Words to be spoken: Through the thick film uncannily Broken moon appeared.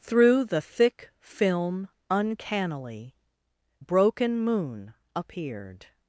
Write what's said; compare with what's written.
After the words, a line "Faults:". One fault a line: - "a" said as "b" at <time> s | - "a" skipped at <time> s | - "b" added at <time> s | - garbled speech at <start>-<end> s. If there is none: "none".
Through the thick film uncannily Broken moon appeared.
Faults:
none